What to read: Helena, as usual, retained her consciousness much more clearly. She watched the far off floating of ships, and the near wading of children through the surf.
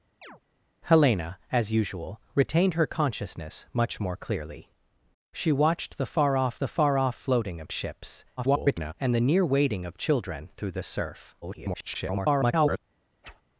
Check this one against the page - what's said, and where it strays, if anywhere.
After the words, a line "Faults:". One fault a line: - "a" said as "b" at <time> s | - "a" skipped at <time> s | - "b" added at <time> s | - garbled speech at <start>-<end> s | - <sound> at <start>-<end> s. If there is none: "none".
Helena, as usual, retained her consciousness much more clearly. She watched the far off the far off floating of ships, [garbled] and the near wading of children through the surf. [garbled]
Faults:
- chirp at 0.2-0.4 s
- "the far off" added at 6.6 s
- garbled speech at 8.4-8.9 s
- garbled speech at 11.4-12.8 s
- whoosh at 13.2-13.4 s